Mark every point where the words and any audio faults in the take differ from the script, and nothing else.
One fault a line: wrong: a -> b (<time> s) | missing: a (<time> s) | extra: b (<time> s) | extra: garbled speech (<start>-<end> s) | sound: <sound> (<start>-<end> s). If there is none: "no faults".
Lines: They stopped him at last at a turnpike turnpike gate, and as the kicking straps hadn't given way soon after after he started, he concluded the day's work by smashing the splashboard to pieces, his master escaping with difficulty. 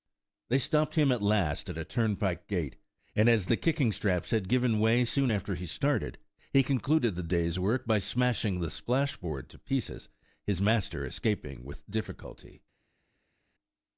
missing: turnpike (2.5 s)
wrong: hadn't -> had (4.3 s)
missing: after (5.5 s)